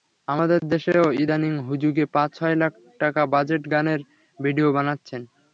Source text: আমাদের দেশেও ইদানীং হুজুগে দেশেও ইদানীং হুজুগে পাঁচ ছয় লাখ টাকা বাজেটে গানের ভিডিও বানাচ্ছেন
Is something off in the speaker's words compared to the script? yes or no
yes